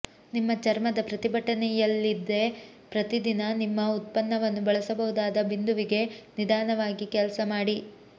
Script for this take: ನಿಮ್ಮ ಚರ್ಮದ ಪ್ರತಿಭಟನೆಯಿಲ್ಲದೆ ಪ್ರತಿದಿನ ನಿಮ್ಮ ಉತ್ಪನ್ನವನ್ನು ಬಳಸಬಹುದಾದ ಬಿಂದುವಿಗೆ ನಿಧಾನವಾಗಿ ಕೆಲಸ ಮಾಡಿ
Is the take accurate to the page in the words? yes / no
yes